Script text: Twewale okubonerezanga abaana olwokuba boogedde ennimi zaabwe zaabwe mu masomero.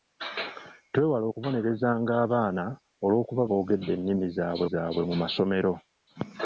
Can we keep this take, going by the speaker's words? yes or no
yes